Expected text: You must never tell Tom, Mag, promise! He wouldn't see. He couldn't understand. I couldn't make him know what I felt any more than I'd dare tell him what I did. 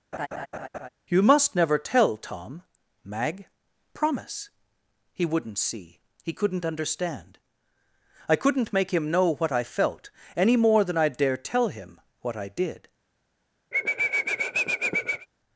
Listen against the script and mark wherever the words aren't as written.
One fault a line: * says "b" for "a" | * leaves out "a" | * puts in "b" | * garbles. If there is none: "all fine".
all fine